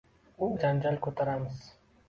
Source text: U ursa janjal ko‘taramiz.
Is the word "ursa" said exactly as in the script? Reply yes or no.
no